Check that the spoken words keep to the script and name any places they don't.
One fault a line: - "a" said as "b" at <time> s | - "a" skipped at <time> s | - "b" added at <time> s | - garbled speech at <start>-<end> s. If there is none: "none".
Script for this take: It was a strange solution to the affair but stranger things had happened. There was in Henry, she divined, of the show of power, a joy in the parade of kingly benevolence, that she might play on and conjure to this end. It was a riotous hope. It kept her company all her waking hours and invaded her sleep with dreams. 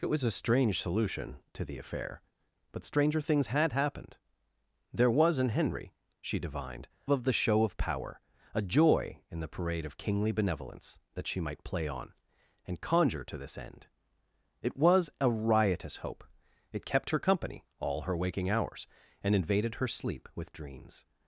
none